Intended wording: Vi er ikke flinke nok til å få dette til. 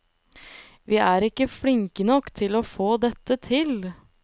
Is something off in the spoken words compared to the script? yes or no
no